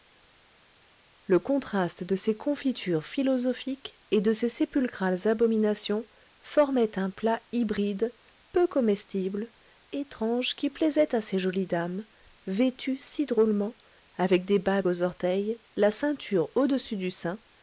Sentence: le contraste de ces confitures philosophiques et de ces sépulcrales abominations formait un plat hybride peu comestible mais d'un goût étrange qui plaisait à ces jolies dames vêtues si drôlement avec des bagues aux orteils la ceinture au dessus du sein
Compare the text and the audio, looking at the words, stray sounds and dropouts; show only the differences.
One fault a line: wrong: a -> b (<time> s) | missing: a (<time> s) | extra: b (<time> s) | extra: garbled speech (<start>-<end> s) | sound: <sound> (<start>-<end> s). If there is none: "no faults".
missing: mais d'un goût (9.5 s)